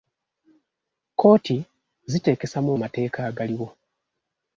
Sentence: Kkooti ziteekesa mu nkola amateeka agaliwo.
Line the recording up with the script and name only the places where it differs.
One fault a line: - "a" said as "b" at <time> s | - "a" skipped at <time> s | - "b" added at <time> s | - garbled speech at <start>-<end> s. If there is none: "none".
- "nkola" skipped at 2.7 s